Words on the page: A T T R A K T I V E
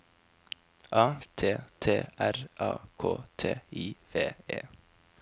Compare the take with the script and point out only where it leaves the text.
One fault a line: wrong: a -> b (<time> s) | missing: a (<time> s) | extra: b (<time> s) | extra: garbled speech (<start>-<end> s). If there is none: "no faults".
no faults